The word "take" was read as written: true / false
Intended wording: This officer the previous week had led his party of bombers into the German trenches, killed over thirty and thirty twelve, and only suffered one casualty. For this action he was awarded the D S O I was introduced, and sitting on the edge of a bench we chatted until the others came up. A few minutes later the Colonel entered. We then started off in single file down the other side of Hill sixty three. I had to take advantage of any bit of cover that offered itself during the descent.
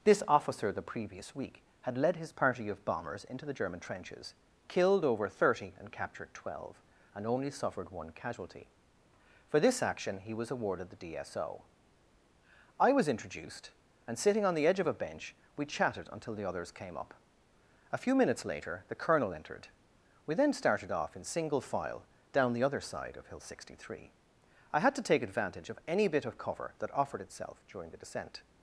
true